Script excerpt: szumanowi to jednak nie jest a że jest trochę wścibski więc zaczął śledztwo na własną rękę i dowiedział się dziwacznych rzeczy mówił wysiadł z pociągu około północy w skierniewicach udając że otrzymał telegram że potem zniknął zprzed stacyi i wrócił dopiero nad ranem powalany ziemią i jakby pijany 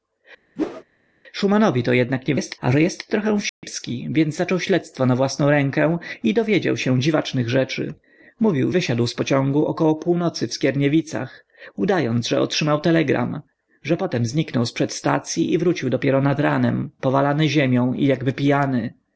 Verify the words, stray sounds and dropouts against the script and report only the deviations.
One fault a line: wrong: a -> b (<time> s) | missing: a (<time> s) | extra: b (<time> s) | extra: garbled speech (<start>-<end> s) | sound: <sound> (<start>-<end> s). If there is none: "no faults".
sound: whoosh (0.6-0.8 s)
sound: dropout (3.5-3.6 s)